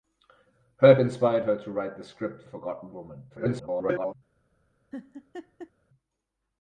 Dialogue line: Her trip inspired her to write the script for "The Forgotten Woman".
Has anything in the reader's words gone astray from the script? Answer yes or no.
yes